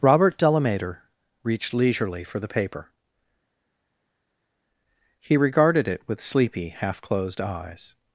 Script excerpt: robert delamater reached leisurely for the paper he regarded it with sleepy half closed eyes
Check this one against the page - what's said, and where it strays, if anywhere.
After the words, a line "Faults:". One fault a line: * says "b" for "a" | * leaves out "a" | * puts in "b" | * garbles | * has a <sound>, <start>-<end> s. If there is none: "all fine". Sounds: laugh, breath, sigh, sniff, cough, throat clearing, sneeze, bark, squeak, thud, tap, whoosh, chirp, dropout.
robert delamater reached leisurely for the paper he regarded it with sleepy half closed eyes
Faults:
all fine